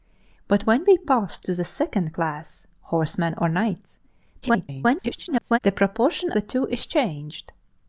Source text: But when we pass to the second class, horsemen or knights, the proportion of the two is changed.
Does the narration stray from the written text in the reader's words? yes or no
yes